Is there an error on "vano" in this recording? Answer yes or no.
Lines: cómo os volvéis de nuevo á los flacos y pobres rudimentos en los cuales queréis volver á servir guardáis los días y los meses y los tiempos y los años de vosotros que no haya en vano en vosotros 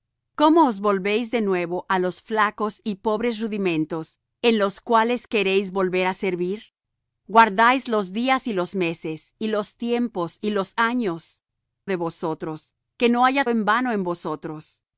no